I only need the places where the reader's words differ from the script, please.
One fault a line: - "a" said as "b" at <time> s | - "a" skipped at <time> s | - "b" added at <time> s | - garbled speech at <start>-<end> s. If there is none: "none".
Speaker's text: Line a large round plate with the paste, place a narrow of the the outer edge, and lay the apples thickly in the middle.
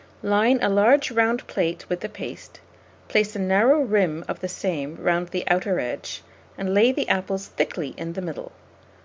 - "rim" added at 3.8 s
- "same round" added at 4.5 s